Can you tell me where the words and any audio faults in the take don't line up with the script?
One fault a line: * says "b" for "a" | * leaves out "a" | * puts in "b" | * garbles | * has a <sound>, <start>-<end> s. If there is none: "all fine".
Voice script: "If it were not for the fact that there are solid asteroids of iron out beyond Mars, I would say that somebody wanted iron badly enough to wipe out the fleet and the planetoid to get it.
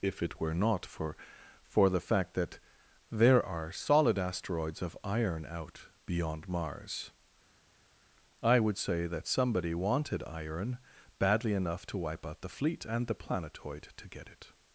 * puts in "for"